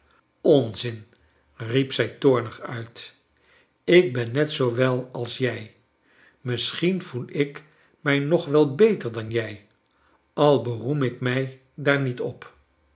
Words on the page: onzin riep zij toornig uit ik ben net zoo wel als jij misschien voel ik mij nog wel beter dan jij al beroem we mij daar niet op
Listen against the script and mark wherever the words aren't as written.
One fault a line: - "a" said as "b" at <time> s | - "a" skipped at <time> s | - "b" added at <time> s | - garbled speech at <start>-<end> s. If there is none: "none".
- "we" said as "ik" at 11.0 s